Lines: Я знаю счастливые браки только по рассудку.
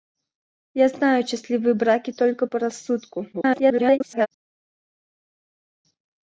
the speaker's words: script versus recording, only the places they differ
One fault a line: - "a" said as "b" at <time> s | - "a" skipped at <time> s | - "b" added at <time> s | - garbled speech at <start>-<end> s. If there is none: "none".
- garbled speech at 3.3-4.3 s